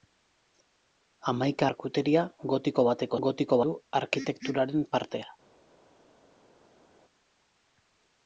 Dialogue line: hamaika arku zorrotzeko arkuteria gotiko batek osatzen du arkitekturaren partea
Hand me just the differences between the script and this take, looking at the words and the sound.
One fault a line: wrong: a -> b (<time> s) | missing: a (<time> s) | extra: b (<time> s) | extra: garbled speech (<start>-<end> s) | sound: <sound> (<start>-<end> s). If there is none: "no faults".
missing: arku zorrotzeko (1.7 s)
wrong: osatzen -> gotiko (3.3 s)